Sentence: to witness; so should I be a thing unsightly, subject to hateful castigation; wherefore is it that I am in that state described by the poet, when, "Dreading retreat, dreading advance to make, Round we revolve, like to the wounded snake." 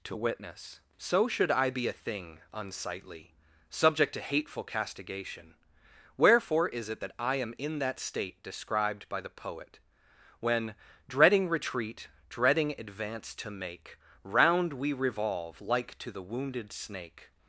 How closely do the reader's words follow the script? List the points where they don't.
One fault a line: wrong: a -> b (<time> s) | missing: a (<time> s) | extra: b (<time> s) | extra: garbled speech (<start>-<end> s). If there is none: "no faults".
no faults